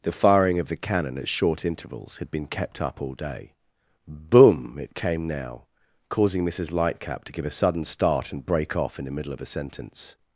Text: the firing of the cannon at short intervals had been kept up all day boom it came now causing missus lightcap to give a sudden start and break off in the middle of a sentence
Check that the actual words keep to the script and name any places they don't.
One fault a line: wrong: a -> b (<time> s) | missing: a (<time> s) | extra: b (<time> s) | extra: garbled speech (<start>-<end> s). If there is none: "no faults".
no faults